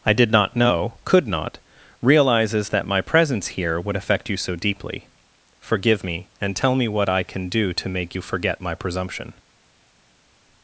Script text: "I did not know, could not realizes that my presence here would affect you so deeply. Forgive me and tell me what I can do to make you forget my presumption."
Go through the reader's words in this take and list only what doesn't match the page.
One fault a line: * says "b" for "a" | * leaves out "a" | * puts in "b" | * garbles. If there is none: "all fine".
all fine